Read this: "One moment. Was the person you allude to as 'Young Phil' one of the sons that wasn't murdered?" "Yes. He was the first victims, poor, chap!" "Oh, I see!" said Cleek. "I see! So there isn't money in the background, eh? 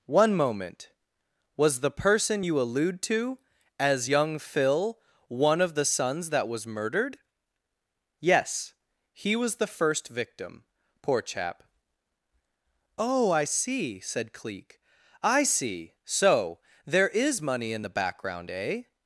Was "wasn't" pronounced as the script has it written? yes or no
no